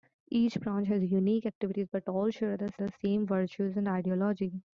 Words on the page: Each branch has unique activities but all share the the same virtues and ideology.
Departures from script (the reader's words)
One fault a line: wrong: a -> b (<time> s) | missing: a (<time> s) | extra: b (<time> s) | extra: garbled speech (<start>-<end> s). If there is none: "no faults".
no faults